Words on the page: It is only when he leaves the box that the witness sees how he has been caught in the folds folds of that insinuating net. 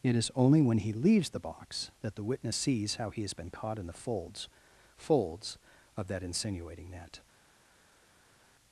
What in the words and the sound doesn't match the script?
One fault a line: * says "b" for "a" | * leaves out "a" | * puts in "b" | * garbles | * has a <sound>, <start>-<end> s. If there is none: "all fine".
all fine